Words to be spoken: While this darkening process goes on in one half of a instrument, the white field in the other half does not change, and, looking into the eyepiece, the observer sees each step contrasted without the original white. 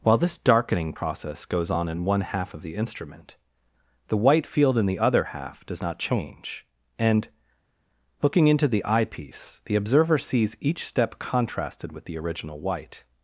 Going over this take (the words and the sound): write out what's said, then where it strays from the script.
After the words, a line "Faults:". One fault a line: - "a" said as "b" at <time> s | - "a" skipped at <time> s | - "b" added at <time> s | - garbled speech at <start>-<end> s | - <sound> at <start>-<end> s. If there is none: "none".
While this darkening process goes on in one half of the instrument, the white field in the other half does not change, and, looking into the eyepiece, the observer sees each step contrasted with the original white.
Faults:
- "a" said as "the" at 2.6 s
- "without" said as "with" at 11.9 s